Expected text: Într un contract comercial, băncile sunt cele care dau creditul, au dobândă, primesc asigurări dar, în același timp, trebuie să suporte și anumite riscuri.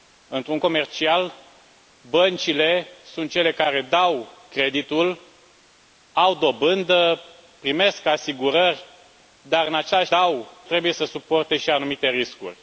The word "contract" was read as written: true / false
false